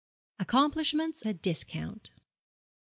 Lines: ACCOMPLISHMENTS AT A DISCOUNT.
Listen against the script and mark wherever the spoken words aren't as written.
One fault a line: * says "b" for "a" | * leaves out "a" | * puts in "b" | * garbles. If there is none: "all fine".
* leaves out "AT"